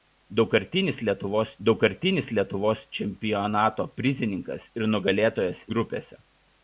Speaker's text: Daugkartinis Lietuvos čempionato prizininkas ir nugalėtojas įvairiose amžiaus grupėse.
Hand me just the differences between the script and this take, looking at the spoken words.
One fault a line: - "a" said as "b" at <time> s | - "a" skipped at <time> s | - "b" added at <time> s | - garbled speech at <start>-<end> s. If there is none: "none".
- "daugkartinis Lietuvos" added at 1.7 s
- "įvairiose amžiaus" skipped at 5.6 s